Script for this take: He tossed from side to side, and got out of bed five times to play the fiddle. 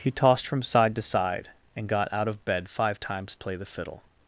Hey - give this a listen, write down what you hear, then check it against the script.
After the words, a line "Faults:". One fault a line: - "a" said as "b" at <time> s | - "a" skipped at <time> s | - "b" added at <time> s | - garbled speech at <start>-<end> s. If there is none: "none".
He tossed from side to side, and got out of bed five times play the fiddle.
Faults:
- "to" skipped at 3.4 s